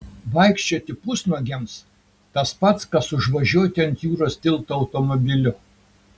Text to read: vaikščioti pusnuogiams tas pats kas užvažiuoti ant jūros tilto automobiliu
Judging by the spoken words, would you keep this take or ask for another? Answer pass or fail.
pass